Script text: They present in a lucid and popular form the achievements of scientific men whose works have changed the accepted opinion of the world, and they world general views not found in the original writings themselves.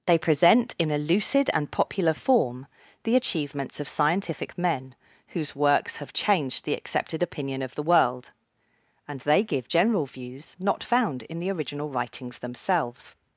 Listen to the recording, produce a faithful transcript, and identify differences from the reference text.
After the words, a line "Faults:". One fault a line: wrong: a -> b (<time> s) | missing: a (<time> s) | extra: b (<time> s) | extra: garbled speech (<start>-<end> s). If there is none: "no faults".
They present in a lucid and popular form the achievements of scientific men whose works have changed the accepted opinion of the world, and they give general views not found in the original writings themselves.
Faults:
wrong: world -> give (9.4 s)